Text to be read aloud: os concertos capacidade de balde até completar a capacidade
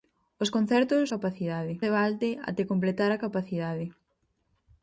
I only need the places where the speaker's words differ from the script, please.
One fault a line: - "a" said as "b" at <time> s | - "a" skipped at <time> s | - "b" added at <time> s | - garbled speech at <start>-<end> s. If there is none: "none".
none